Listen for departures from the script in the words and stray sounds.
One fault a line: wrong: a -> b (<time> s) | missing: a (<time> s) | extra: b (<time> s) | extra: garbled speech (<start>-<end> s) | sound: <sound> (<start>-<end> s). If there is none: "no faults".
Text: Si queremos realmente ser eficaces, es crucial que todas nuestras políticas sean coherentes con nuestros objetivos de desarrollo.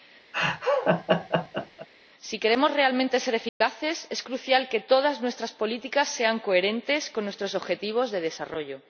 sound: laugh (0.3-1.9 s)
sound: dropout (3.5-3.6 s)